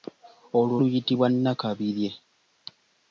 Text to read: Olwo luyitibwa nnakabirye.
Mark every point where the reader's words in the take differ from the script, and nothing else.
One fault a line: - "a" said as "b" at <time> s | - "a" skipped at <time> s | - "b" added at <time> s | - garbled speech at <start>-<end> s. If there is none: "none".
none